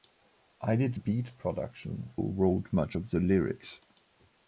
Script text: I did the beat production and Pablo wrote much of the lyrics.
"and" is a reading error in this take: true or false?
true